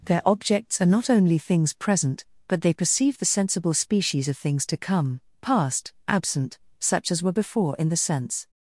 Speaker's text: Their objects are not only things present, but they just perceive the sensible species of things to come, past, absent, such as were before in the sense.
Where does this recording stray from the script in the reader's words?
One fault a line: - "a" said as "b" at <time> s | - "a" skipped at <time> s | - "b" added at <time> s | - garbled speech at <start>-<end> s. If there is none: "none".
- "just" skipped at 2.7 s